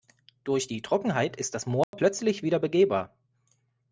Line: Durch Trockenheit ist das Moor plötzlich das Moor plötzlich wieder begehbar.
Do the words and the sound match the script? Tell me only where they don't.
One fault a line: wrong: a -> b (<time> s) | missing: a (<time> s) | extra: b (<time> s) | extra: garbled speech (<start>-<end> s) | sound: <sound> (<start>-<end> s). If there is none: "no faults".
extra: die (0.6 s)
sound: dropout (1.8-1.9 s)
missing: das Moor plötzlich (2.4 s)